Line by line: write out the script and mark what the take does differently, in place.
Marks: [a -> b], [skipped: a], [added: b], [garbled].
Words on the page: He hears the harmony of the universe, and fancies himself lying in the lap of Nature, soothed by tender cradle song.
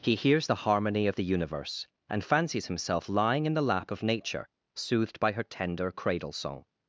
He hears the harmony of the universe, and fancies himself lying in the lap of Nature, soothed by [added: her] tender cradle song.